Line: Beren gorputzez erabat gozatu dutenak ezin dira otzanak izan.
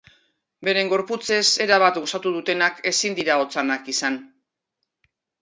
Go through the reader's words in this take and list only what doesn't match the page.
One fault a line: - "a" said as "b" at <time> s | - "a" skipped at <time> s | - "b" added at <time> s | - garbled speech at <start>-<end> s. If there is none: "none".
none